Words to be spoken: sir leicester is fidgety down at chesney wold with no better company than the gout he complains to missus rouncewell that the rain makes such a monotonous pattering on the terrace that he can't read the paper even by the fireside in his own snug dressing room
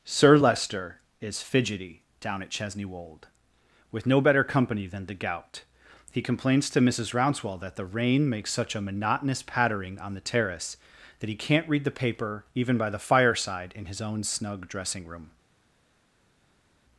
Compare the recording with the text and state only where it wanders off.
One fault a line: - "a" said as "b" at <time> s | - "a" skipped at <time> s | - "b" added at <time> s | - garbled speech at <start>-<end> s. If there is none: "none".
none